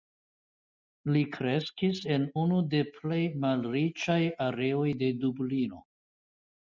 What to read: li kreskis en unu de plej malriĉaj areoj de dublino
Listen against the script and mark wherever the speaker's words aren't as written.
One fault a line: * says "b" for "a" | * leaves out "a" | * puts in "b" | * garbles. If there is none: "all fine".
all fine